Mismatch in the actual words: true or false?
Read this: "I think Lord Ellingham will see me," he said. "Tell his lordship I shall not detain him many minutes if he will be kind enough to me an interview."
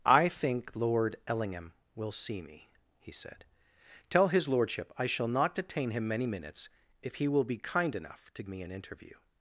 false